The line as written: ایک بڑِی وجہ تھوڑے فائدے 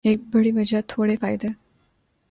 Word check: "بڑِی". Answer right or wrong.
right